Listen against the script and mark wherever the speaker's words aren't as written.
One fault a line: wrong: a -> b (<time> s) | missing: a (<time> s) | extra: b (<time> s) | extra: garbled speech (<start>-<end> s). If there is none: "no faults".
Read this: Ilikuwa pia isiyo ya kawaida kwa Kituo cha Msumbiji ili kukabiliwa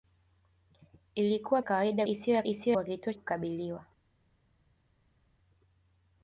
wrong: pia -> kawaida (1.6 s)
wrong: kawaida -> isiyo (2.4 s)
missing: cha Msumbiji ili (3.1 s)